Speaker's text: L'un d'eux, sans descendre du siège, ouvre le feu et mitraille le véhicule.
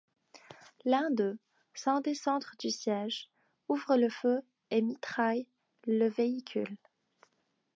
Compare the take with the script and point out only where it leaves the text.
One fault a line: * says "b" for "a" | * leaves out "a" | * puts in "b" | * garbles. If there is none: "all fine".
all fine